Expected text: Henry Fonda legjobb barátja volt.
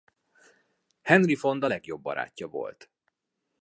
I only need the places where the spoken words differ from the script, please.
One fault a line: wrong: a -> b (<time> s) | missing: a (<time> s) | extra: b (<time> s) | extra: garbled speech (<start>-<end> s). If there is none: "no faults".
no faults